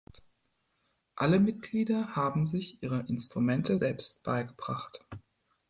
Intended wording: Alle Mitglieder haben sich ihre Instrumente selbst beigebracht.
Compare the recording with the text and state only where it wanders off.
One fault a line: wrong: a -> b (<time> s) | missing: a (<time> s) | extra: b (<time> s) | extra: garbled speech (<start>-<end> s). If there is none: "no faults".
no faults